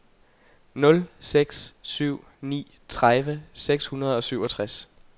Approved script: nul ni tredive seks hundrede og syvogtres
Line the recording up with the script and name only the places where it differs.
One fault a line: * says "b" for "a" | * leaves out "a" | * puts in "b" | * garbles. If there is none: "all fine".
* puts in "seks syv"